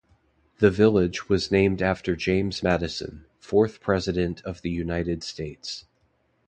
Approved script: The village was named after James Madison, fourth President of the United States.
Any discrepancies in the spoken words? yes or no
no